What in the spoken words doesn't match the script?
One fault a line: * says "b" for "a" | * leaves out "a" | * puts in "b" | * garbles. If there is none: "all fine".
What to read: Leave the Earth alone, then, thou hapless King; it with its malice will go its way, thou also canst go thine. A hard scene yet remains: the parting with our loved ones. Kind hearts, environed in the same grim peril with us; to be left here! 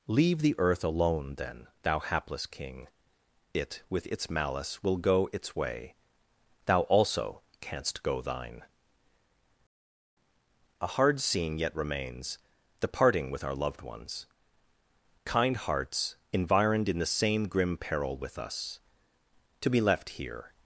all fine